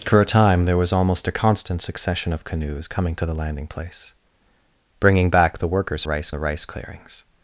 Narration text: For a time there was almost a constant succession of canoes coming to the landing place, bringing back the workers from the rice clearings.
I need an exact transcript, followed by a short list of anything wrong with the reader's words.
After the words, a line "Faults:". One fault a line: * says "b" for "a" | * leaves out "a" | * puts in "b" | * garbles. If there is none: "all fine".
For a time there was almost a constant succession of canoes coming to the landing place, bringing back the workers rice the rice clearings.
Faults:
* says "rice" for "from"